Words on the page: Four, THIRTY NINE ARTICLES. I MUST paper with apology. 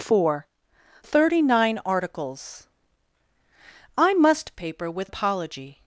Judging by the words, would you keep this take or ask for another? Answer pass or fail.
pass